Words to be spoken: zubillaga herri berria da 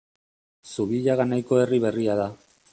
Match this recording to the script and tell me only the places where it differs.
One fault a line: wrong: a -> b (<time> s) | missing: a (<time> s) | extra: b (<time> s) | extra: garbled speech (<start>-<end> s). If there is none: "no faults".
extra: nahiko (1.3 s)